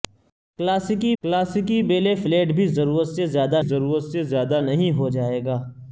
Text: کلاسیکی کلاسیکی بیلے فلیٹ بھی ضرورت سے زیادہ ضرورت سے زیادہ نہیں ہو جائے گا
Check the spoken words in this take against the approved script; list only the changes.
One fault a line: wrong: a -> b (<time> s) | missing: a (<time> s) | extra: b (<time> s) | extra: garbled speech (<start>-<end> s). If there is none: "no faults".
no faults